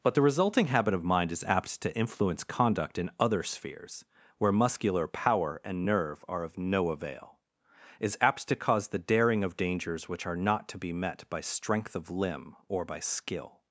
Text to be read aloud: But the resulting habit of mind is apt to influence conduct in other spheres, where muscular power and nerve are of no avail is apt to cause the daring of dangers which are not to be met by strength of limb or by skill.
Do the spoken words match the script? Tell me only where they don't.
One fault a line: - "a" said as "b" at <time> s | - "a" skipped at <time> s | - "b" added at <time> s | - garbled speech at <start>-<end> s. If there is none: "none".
none